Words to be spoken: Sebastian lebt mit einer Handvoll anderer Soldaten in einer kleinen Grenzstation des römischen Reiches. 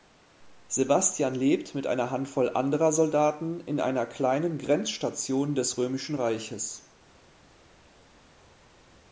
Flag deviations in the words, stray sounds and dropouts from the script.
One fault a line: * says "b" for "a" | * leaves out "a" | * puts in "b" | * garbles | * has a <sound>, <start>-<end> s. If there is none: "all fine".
all fine